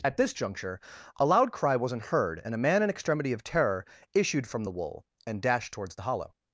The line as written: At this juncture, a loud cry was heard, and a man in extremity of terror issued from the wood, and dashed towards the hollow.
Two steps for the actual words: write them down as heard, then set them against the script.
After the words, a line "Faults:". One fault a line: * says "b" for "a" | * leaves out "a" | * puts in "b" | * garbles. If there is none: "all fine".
At this juncture, a loud cry wasn't heard, and a man in extremity of terror issued from the wool, and dashed towards the hollow.
Faults:
* says "wasn't" for "was"
* says "wool" for "wood"